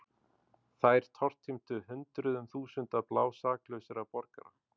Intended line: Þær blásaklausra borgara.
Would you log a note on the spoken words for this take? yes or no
yes